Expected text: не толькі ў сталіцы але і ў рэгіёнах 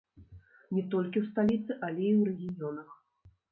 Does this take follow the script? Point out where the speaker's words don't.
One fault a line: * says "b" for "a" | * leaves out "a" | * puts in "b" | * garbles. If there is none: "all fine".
all fine